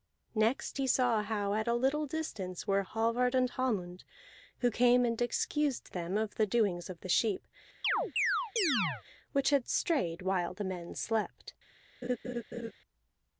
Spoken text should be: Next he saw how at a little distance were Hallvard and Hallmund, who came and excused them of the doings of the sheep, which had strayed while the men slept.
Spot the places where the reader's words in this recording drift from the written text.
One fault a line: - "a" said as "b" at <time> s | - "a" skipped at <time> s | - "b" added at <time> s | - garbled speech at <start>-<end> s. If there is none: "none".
none